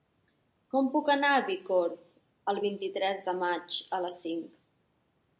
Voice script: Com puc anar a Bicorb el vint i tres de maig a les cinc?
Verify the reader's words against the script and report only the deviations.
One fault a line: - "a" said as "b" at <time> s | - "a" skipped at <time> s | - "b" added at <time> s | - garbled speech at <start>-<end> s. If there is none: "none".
none